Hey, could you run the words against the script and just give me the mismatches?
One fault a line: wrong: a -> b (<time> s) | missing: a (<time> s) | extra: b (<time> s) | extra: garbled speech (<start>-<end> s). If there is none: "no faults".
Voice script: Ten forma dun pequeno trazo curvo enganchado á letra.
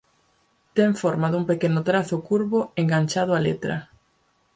no faults